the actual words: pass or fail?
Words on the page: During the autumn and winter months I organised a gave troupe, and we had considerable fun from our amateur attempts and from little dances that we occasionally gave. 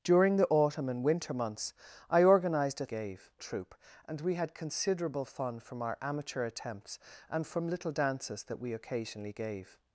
pass